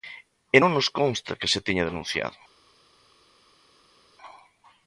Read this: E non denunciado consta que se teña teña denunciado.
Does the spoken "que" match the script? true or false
true